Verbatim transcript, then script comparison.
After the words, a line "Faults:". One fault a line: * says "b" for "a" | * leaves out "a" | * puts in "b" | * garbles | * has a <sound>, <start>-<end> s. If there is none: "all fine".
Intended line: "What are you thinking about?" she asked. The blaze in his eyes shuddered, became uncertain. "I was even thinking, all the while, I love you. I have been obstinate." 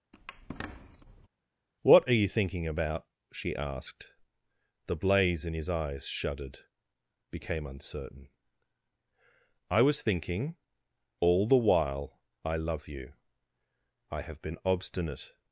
"What are you thinking about?" she asked. The blaze in his eyes shuddered, became uncertain. "I was thinking, all the while, I love you. I have been obstinate."
Faults:
* has a squeak, 0.1-1.3 s
* leaves out "even"